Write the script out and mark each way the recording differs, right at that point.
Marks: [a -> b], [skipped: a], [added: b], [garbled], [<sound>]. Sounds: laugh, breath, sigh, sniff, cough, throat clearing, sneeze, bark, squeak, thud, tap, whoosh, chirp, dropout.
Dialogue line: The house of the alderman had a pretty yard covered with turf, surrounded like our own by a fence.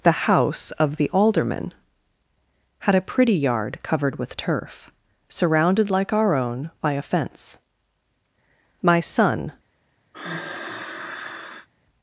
The house of the alderman had a pretty yard covered with turf, surrounded like our own by a fence. [added: My son] [sigh]